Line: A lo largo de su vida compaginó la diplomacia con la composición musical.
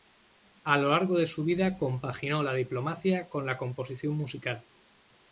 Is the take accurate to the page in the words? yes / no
yes